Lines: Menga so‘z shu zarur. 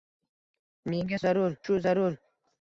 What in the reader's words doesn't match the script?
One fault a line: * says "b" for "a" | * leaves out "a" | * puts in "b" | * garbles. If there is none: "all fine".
* says "zarur" for "so‘z"